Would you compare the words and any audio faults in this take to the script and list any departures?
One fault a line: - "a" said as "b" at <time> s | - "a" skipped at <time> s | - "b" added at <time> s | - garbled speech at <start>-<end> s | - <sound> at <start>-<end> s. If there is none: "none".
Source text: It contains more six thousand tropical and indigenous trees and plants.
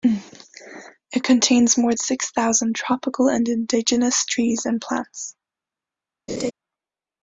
- laugh at 6.3-6.5 s